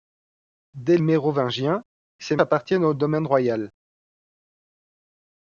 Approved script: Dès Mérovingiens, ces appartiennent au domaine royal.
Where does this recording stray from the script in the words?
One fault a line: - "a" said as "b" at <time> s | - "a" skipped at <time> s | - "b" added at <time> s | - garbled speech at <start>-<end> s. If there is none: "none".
none